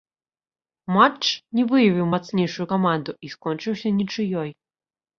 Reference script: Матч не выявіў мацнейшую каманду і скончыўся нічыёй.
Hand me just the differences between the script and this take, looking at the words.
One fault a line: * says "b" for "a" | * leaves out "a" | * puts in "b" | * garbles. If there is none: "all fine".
all fine